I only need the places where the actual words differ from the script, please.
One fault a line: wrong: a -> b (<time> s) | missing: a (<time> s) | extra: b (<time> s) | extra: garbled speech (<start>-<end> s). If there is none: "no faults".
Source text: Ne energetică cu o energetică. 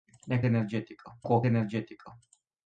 no faults